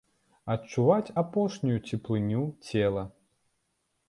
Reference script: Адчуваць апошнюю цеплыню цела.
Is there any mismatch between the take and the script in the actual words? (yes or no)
no